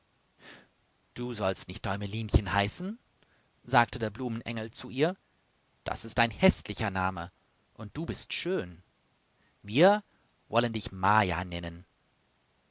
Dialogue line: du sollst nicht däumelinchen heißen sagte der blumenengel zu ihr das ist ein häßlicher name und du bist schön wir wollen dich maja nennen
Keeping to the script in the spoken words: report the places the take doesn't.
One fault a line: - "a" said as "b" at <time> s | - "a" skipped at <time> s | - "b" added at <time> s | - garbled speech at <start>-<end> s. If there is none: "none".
none